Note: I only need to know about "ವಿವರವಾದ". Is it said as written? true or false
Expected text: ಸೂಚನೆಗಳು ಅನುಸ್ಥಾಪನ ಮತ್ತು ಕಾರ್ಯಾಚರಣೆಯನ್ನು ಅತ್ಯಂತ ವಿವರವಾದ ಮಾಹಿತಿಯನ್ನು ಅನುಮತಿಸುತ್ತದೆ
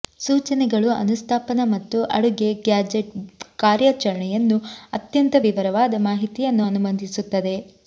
true